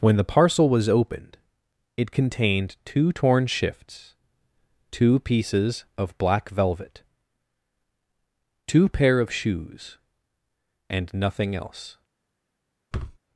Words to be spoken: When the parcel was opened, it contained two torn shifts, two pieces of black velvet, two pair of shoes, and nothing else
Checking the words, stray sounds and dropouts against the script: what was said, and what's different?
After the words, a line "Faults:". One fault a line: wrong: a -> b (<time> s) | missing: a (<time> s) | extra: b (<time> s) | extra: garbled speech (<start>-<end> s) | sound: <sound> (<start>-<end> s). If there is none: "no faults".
When the parcel was opened, it contained two torn shifts, two pieces of black velvet, two pair of shoes, and nothing else
Faults:
sound: thud (12.9-13.2 s)